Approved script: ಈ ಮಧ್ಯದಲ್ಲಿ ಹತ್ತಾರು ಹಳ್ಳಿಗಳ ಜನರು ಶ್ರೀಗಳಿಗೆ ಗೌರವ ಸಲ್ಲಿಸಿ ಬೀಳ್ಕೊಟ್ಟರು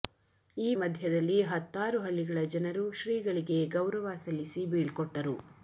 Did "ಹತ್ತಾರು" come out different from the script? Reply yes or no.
no